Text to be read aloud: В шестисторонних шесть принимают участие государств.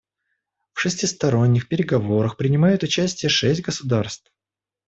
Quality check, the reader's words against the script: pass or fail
fail